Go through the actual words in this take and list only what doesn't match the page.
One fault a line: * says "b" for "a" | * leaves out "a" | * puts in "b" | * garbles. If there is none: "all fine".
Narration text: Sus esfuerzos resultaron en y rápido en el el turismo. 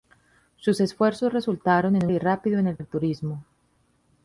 all fine